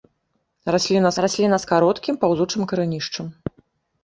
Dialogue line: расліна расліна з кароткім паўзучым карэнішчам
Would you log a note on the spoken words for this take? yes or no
no